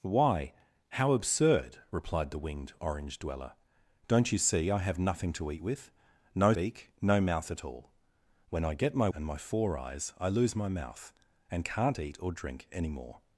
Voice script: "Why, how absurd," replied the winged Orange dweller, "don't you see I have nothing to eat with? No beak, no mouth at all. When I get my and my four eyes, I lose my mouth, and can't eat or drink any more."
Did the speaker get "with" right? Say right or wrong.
right